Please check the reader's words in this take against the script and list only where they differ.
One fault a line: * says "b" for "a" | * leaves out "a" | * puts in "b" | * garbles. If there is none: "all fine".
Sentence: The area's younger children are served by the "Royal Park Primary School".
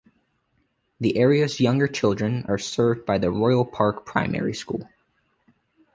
all fine